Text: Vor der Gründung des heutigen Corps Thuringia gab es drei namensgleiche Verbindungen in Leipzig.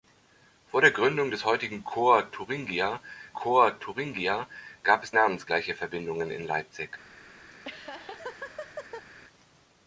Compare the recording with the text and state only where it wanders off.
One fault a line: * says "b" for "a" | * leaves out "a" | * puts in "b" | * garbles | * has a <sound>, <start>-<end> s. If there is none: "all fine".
* puts in "Corps Thuringia"
* leaves out "drei"
* has a laugh, 7.5-9.1 s